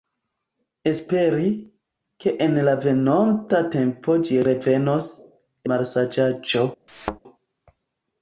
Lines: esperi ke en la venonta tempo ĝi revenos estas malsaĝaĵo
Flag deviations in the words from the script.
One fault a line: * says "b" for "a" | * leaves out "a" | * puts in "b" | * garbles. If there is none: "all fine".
* leaves out "estas"